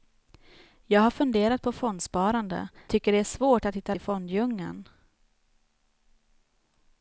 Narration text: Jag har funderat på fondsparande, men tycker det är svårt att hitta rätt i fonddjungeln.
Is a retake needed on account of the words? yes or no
yes